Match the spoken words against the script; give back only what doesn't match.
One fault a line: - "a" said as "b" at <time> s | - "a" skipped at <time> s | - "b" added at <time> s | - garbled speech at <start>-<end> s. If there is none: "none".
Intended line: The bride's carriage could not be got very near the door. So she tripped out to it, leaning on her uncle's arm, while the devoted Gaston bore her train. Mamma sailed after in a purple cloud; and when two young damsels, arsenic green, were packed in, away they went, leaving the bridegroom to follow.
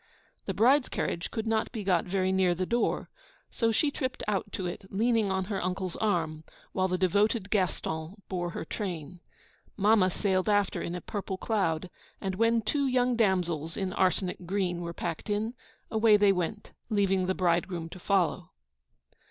- "in" added at 13.8 s